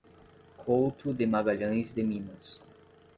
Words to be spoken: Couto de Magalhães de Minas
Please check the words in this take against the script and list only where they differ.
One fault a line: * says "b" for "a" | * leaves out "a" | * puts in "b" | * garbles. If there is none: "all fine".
all fine